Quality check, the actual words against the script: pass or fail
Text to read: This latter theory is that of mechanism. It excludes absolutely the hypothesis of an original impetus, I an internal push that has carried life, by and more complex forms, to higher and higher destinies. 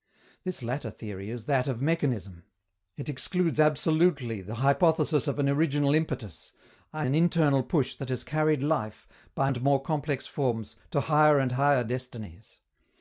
pass